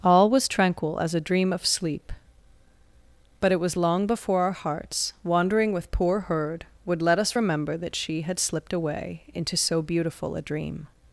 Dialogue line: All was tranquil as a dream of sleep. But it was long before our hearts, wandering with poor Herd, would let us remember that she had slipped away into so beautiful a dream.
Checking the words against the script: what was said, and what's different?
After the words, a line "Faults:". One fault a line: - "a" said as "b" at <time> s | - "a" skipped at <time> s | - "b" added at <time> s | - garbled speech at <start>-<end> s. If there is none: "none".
All was tranquil as a dream of sleep. But it was long before our hearts, wandering with poor Herd, would let us remember that she had slipped away into so beautiful a dream.
Faults:
none